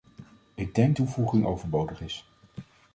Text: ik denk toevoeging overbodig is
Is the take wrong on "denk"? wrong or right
right